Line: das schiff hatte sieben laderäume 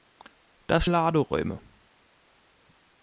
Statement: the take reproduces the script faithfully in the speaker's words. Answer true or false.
false